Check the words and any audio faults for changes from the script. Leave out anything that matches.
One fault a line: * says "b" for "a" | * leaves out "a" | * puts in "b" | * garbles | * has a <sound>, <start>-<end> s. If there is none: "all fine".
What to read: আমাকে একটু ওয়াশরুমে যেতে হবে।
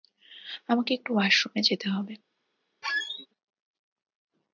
* has a squeak, 2.8-3.3 s